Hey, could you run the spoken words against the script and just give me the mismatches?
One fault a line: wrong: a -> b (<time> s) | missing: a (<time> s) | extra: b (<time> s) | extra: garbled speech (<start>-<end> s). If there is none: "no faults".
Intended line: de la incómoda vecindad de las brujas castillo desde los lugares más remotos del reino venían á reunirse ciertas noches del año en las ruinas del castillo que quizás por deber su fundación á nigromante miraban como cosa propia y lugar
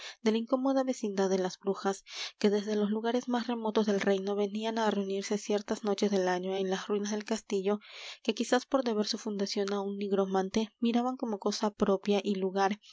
wrong: castillo -> que (2.4 s)
extra: un (9.8 s)